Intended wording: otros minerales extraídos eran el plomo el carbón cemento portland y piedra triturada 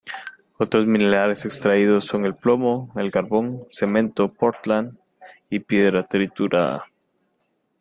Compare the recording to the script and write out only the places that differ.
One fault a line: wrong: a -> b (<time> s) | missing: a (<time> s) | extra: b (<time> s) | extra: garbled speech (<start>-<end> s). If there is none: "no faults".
wrong: eran -> son (2.0 s)